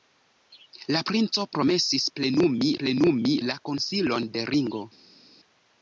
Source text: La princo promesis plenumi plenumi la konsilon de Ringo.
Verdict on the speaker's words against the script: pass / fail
pass